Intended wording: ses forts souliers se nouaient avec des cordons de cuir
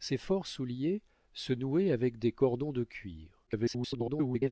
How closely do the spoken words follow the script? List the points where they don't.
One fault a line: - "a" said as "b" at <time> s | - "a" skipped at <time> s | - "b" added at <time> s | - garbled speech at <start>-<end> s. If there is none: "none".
- garbled speech at 3.5-4.5 s